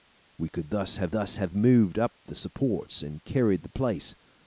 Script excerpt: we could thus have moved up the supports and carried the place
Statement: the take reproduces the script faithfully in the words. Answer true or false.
false